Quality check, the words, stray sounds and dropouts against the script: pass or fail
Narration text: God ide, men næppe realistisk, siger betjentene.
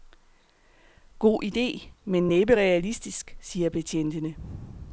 pass